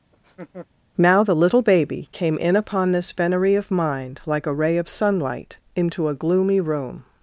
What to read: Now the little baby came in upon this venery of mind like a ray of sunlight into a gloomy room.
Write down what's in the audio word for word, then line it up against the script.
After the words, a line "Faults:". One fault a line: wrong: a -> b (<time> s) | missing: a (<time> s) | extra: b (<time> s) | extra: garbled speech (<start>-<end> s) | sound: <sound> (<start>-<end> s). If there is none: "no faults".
Now the little baby came in upon this venery of mind like a ray of sunlight into a gloomy room.
Faults:
sound: laugh (0.1-0.7 s)